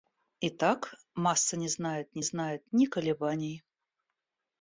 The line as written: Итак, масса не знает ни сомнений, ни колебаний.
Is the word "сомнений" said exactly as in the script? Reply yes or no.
no